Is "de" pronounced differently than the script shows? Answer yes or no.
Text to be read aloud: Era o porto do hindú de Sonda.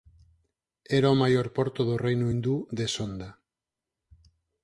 no